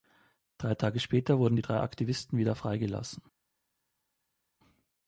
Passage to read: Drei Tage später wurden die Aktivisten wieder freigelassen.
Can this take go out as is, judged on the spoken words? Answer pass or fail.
fail